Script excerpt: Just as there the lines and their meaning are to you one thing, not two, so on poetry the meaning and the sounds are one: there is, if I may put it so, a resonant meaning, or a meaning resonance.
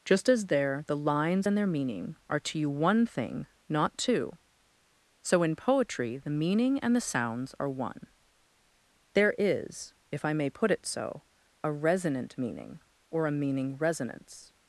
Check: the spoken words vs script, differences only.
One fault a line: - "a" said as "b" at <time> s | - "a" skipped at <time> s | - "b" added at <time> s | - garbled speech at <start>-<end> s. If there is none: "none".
- "on" said as "in" at 5.4 s